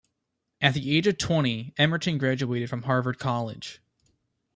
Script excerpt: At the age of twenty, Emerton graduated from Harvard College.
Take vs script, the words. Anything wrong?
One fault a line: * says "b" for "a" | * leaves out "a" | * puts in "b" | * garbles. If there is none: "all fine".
all fine